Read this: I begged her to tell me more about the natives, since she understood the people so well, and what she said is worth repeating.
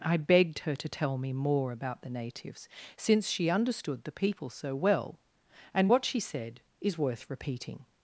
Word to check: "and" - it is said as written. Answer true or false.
true